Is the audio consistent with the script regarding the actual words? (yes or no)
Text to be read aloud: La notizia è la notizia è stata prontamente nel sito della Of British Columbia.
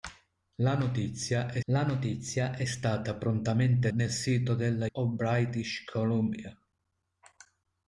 yes